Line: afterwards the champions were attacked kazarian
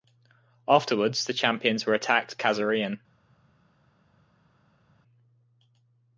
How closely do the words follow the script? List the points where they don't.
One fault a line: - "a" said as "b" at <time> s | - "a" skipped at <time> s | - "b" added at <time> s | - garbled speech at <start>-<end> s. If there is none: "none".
none